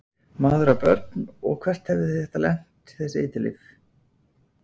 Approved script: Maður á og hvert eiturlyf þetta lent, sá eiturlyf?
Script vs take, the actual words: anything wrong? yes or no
yes